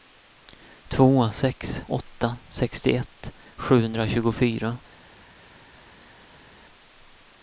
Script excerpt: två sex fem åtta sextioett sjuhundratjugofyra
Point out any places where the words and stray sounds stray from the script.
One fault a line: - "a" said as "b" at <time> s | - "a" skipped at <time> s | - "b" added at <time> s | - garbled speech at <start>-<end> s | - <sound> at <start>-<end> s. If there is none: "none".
- "fem" skipped at 1.8 s